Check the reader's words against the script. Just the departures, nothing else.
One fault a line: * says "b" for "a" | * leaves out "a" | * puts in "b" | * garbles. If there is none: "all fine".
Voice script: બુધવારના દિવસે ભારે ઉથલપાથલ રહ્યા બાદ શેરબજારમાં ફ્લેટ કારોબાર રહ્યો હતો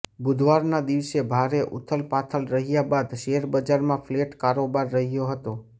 all fine